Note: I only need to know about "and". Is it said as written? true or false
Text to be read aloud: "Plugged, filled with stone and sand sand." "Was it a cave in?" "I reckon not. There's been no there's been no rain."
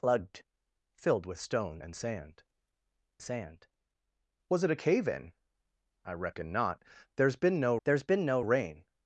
true